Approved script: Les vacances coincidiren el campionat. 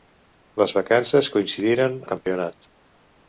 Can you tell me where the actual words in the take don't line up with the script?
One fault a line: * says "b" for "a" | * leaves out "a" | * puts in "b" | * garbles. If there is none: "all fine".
all fine